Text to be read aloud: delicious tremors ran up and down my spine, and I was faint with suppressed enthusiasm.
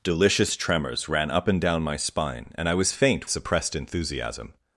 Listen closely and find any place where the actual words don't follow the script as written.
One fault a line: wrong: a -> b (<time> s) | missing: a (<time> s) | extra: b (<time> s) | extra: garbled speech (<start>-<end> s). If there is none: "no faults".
missing: with (3.3 s)